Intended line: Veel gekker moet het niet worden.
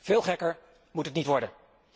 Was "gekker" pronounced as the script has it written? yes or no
yes